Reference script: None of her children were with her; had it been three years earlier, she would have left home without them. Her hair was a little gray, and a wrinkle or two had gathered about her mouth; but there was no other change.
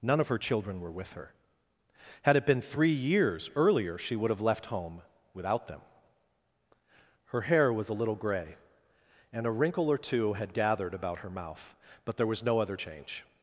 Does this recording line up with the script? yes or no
yes